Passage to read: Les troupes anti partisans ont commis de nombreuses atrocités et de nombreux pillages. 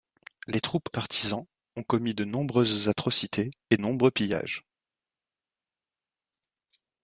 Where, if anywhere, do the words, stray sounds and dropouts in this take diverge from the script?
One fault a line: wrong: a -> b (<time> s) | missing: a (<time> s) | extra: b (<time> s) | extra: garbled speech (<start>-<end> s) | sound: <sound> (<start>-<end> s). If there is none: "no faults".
missing: anti (0.9 s)
missing: de (3.8 s)